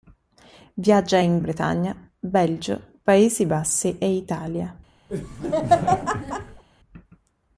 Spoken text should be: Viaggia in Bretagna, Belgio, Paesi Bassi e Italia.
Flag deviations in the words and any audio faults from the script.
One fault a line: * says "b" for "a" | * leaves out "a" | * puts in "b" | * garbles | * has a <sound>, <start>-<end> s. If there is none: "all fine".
* has a laugh, 5.1-6.6 s